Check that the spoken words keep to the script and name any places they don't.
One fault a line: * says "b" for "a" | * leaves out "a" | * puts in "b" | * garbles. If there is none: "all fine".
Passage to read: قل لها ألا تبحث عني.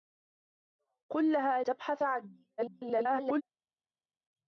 * leaves out "ألا"
* garbles